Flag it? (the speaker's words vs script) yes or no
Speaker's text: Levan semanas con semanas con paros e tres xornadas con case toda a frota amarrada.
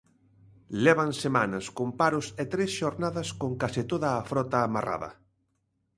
yes